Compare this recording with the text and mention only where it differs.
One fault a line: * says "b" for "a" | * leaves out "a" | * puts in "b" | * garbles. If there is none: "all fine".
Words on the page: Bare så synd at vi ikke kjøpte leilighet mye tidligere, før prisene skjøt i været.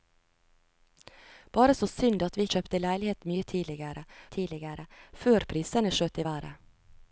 * leaves out "ikke"
* puts in "tidligere"